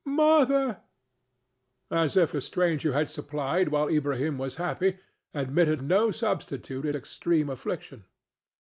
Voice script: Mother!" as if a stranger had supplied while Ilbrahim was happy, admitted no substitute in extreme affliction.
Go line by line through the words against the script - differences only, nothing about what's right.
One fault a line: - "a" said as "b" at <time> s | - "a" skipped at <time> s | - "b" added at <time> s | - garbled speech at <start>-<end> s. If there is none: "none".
none